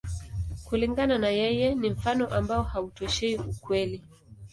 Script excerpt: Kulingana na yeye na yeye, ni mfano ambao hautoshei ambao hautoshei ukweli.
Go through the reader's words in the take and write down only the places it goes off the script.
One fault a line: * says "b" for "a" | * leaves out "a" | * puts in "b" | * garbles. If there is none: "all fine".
* leaves out "na yeye"
* leaves out "ambao hautoshei"